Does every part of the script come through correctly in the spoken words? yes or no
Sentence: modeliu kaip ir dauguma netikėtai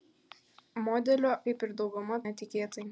yes